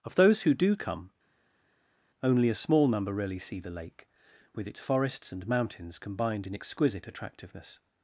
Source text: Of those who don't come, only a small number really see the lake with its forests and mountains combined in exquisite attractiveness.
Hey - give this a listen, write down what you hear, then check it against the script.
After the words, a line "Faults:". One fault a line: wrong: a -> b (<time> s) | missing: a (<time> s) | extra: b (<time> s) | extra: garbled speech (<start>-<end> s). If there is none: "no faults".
Of those who do come, only a small number really see the lake with its forests and mountains combined in exquisite attractiveness.
Faults:
wrong: don't -> do (0.5 s)